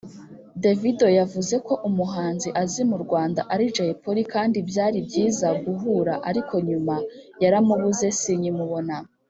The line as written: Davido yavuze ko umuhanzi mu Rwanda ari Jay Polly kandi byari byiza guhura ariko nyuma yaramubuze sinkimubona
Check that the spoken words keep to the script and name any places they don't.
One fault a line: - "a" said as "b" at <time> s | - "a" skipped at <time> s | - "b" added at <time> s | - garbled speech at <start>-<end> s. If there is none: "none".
- "azi" added at 2.6 s